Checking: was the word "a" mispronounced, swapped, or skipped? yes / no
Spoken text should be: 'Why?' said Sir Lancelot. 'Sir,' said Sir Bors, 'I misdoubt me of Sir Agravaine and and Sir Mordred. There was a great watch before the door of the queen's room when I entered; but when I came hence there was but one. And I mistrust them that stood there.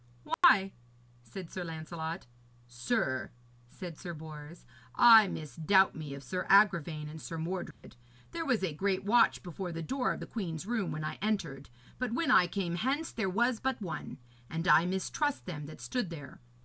no